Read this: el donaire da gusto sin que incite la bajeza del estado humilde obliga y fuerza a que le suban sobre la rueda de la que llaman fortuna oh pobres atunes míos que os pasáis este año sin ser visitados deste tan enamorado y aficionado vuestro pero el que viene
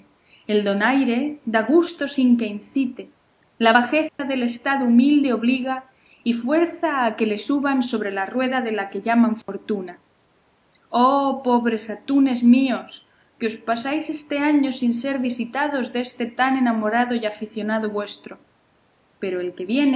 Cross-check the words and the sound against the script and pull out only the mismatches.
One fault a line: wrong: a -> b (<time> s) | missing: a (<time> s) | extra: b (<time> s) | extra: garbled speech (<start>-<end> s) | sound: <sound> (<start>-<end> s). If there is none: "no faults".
sound: dropout (4.1-4.2 s)
sound: dropout (9.4-9.5 s)